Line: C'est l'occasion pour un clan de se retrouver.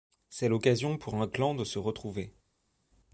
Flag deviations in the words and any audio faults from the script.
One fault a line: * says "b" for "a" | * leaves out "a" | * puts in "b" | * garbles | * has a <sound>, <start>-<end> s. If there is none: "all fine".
all fine